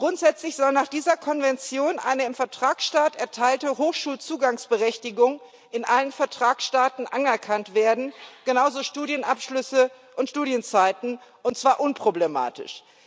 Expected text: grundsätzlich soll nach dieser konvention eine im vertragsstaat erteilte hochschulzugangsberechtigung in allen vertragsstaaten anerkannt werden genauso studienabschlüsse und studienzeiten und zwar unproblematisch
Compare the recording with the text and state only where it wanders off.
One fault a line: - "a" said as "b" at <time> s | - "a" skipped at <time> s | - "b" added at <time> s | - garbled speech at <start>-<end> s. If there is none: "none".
none